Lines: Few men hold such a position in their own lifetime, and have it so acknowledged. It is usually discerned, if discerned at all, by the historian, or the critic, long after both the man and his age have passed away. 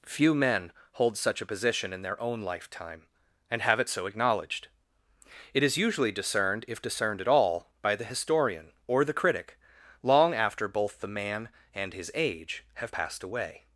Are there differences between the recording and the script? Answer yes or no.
no